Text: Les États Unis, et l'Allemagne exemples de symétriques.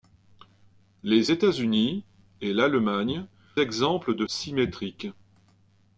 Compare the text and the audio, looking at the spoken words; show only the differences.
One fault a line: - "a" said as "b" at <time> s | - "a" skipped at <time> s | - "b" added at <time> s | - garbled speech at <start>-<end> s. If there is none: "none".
none